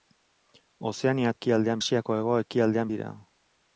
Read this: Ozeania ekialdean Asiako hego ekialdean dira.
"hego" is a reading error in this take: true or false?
false